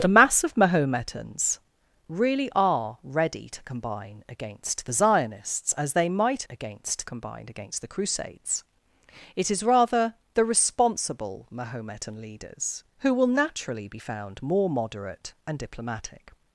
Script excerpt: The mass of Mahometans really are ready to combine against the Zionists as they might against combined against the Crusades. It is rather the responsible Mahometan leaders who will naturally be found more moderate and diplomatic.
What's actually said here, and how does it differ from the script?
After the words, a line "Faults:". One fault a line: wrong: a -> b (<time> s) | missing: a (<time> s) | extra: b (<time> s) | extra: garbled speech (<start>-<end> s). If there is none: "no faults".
The mass of Mahometans really are ready to combine against the Zionists as they might against combined against the Crusades. It is rather the responsible Mahometan leaders who will naturally be found more moderate and diplomatic.
Faults:
no faults